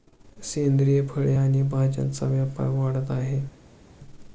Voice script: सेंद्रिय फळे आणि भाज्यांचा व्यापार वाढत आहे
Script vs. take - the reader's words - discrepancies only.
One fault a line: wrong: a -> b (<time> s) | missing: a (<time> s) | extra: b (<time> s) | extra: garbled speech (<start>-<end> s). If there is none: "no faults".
no faults